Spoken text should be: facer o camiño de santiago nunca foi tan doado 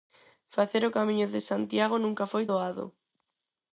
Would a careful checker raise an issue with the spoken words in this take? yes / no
yes